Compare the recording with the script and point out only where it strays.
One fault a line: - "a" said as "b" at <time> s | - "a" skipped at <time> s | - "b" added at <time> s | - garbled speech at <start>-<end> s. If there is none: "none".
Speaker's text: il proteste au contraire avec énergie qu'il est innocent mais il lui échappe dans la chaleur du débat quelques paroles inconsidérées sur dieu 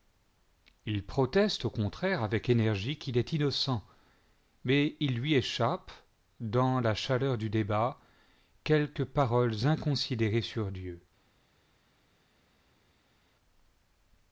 none